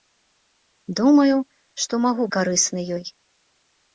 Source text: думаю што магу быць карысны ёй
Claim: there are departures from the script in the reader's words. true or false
true